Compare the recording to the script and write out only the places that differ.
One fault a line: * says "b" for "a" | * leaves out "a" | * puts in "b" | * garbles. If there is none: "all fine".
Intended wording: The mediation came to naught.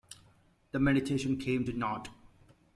all fine